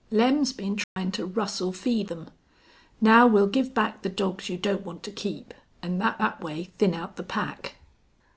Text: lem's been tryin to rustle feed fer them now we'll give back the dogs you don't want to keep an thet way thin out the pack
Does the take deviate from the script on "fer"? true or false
true